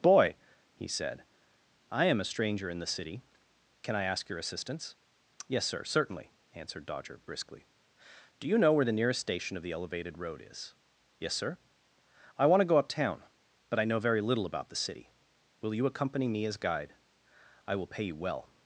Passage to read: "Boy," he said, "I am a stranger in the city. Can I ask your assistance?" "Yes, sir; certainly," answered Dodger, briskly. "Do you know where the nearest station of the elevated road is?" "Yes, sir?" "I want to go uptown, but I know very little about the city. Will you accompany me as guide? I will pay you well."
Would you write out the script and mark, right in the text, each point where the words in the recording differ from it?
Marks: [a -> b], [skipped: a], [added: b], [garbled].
"Boy," he said, "I am a stranger in the city. Can I ask your assistance?" "Yes, sir; certainly," answered Dodger, briskly. "Do you know where the nearest station of the elevated road is?" "Yes, sir?" "I want to go uptown, but I know very little about the city. Will you accompany me as guide? I will pay you well."